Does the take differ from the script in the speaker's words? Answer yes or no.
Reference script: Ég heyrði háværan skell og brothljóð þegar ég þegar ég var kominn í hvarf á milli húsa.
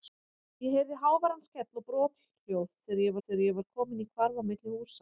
no